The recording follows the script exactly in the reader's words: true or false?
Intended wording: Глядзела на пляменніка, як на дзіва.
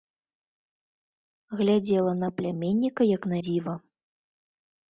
true